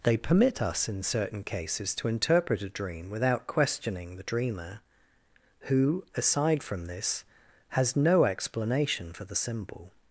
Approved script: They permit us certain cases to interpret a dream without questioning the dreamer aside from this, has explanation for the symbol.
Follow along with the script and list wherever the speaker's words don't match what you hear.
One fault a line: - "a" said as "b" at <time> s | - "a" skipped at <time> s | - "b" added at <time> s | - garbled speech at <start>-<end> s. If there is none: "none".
- "in" added at 0.9 s
- "who" added at 5.6 s
- "no" added at 8.0 s